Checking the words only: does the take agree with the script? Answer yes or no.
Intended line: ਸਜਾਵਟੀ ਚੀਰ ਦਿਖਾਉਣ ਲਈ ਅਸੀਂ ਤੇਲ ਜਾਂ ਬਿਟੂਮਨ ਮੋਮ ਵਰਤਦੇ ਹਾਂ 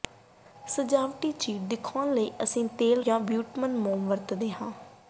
yes